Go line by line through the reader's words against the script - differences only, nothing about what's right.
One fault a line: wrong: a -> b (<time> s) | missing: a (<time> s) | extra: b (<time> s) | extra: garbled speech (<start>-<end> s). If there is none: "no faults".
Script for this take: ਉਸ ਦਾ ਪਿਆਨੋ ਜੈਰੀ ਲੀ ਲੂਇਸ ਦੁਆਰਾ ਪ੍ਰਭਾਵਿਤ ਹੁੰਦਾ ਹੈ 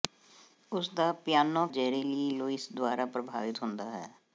no faults